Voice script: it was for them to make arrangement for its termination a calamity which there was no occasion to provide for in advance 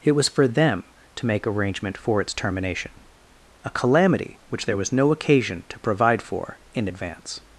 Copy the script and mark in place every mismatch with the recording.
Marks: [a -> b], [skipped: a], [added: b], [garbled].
it was for them to make arrangement for its termination a calamity which there was no occasion to provide for in advance